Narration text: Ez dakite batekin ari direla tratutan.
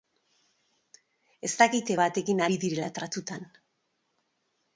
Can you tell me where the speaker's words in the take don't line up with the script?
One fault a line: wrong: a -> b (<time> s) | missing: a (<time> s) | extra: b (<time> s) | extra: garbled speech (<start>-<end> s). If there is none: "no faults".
no faults